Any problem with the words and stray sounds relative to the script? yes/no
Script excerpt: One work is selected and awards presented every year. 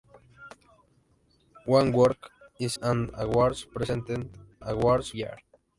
yes